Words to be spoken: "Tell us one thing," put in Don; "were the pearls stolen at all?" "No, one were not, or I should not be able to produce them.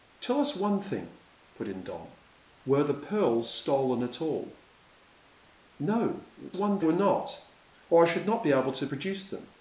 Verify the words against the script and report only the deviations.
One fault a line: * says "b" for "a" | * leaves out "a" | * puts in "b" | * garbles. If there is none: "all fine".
all fine